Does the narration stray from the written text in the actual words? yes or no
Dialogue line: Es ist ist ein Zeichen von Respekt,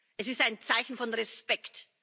yes